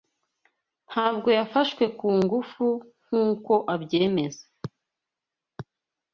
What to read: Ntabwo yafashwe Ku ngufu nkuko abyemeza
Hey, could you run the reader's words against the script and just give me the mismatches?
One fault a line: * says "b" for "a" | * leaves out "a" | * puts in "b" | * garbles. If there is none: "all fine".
all fine